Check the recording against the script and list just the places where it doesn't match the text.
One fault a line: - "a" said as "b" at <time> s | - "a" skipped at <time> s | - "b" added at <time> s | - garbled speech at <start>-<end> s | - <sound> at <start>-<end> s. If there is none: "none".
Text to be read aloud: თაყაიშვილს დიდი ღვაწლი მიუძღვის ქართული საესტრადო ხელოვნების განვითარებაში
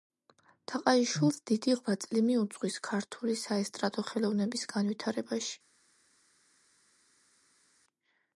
none